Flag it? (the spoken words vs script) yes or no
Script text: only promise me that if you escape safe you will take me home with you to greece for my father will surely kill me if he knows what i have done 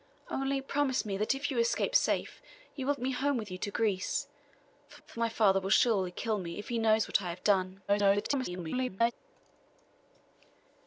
yes